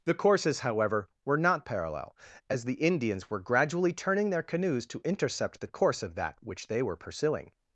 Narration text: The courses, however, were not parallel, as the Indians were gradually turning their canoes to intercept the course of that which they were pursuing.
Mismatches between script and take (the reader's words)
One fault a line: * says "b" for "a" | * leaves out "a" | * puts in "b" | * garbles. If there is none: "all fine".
all fine